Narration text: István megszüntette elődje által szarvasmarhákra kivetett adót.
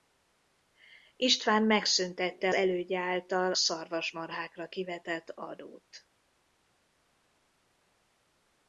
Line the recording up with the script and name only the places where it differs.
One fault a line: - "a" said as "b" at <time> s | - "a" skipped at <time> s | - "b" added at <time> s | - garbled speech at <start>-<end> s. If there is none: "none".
none